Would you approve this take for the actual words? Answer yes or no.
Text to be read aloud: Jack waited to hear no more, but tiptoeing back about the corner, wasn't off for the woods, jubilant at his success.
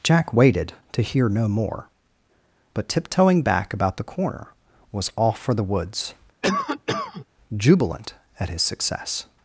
no